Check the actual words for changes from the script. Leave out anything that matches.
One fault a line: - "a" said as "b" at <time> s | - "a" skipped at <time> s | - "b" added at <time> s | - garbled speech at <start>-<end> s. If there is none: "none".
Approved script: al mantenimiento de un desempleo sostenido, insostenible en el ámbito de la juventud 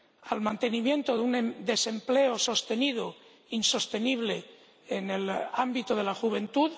none